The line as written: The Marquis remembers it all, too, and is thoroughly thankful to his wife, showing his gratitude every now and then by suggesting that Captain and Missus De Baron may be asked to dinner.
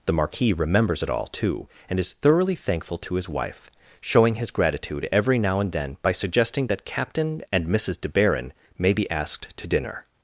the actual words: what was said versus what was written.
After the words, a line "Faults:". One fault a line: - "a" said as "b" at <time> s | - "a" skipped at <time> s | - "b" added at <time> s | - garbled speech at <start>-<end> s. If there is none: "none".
The Marquis remembers it all, too, and is thoroughly thankful to his wife, showing his gratitude every now and then by suggesting that Captain and Missus De Baron may be asked to dinner.
Faults:
none